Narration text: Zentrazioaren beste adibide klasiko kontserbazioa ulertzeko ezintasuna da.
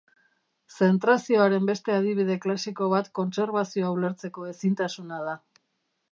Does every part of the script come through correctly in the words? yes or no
no